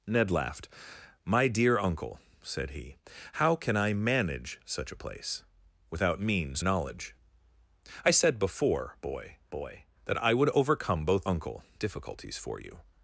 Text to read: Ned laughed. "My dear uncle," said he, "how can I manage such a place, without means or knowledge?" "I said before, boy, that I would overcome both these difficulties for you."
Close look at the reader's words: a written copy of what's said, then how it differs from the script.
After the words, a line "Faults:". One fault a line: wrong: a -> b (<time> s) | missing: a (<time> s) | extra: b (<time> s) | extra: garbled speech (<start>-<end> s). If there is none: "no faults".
Ned laughed. "My dear uncle," said he, "how can I manage such a place, without means knowledge?" "I said before, boy boy, that I would overcome both uncle difficulties for you."
Faults:
missing: or (6.6 s)
extra: boy (9.5 s)
wrong: these -> uncle (11.2 s)